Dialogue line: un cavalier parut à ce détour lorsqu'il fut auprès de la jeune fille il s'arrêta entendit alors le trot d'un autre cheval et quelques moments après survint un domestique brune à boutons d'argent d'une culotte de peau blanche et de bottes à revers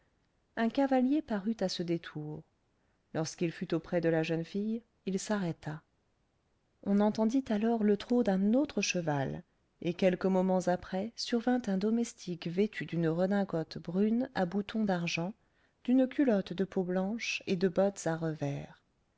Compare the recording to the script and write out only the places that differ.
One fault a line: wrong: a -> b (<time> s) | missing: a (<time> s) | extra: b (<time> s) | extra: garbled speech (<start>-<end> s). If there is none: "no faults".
extra: on (6.8 s)
extra: vêtu d'une redingote (12.5 s)